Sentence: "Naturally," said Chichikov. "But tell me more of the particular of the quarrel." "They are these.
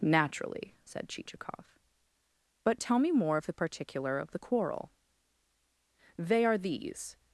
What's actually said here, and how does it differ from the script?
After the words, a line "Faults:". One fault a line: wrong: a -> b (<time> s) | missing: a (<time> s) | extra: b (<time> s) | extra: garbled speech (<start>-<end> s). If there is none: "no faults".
"Naturally," said Chichikov. "But tell me more of the particular of the quarrel." "They are these.
Faults:
no faults